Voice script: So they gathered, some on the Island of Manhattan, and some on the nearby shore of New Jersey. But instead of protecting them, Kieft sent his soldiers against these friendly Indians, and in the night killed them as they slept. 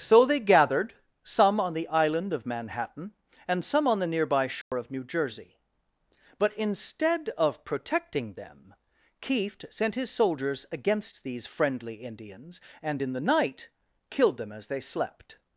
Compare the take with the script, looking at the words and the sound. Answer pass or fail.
fail